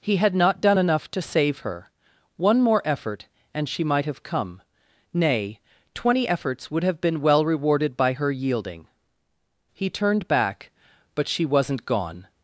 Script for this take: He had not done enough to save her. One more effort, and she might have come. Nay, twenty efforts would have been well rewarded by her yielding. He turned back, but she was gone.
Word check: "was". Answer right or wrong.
wrong